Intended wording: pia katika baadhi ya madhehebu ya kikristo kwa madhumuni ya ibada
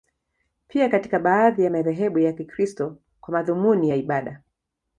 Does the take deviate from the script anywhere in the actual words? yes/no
no